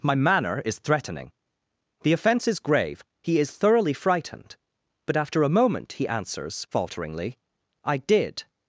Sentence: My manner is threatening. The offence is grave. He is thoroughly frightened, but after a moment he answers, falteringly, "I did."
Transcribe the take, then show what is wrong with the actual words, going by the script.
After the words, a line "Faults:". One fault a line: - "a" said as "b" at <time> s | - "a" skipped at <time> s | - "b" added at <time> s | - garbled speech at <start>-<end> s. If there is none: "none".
My manner is threatening. The offence is grave. He is thoroughly frightened, but after a moment he answers, falteringly, "I did."
Faults:
none